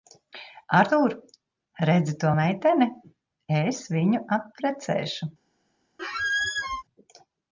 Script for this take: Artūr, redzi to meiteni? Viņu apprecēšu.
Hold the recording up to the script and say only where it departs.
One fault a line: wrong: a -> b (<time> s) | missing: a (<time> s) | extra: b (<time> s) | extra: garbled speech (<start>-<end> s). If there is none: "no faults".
extra: Es (3.6 s)